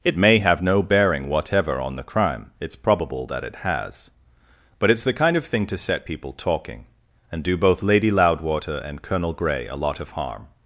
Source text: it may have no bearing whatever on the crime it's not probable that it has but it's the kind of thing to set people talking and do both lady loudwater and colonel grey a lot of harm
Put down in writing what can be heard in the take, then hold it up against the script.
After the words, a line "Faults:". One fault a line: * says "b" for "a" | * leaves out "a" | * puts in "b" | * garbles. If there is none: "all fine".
it may have no bearing whatever on the crime it's probable that it has but it's the kind of thing to set people talking and do both lady loudwater and colonel grey a lot of harm
Faults:
* leaves out "not"